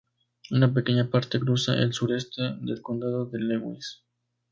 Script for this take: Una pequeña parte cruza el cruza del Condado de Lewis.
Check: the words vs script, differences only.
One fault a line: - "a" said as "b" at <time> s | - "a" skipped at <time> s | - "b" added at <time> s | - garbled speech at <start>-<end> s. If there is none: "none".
- "cruza" said as "sureste" at 1.9 s